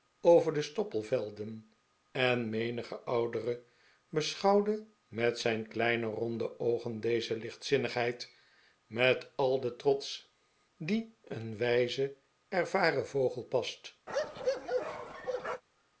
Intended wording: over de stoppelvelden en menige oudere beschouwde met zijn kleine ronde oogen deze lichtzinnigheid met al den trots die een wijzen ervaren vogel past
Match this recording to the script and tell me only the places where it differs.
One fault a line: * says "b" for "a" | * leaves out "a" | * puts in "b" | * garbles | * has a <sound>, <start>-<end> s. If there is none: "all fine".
* has a bark, 14.1-15.6 s